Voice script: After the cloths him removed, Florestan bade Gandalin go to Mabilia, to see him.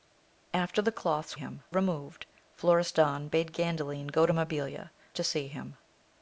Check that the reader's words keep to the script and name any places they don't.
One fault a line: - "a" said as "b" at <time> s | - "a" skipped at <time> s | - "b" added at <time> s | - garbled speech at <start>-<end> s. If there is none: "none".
none